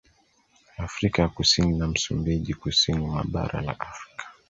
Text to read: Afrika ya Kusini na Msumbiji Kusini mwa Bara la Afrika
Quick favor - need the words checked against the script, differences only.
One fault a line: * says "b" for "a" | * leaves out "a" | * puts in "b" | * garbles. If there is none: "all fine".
all fine